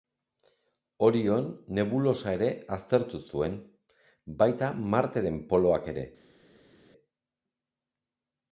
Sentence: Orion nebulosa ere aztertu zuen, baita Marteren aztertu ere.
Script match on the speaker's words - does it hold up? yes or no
no